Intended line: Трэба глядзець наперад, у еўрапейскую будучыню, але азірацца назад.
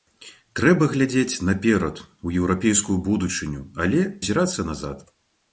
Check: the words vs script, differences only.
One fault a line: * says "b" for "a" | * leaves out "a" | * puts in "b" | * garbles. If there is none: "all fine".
all fine